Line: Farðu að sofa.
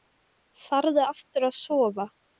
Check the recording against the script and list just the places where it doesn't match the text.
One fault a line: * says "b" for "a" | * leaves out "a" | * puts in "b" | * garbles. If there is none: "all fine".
* puts in "aftur"